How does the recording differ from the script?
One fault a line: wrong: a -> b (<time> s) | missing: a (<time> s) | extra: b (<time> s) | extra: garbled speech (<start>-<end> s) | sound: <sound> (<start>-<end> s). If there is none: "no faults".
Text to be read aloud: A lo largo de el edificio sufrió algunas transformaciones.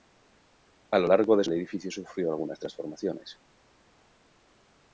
no faults